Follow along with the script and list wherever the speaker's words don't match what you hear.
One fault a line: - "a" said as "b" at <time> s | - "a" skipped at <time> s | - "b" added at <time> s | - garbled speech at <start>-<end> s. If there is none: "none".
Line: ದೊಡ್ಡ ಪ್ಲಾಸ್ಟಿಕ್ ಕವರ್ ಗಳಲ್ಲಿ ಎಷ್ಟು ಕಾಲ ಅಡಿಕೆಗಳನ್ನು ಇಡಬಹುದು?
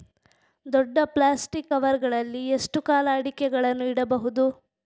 none